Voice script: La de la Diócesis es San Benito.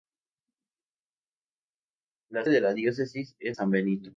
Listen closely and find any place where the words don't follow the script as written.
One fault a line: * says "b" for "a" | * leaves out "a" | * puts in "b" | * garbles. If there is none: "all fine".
all fine